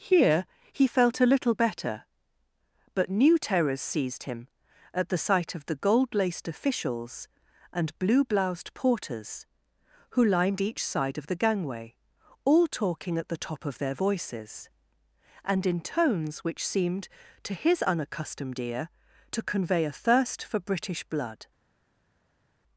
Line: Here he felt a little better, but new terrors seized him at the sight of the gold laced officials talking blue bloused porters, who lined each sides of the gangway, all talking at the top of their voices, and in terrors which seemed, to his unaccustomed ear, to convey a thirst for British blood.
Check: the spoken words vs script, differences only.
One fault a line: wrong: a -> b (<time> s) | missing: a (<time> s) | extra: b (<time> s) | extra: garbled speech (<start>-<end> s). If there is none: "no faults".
wrong: talking -> and (7.7 s)
wrong: sides -> side (10.8 s)
wrong: terrors -> tones (15.8 s)